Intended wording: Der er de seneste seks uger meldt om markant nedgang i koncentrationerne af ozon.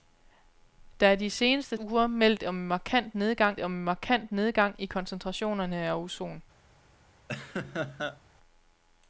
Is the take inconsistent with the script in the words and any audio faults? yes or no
yes